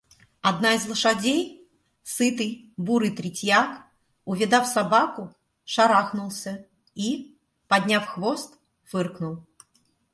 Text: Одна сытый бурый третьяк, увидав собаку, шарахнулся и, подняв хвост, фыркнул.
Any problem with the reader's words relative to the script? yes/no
yes